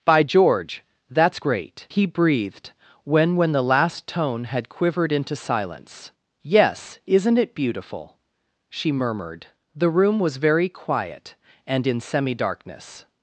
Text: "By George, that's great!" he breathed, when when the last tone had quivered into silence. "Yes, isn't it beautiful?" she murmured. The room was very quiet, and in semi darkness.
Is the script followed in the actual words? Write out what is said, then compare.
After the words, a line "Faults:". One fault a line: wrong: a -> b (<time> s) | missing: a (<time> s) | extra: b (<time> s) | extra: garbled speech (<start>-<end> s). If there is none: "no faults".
"By George, that's great!" he breathed, when when the last tone had quivered into silence. "Yes, isn't it beautiful?" she murmured. The room was very quiet, and in semi darkness.
Faults:
no faults